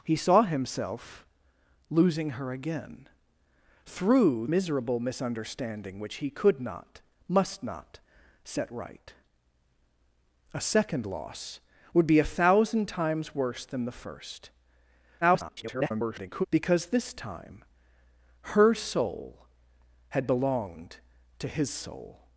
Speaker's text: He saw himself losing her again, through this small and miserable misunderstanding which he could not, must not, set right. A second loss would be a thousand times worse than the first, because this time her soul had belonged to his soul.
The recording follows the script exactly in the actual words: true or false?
false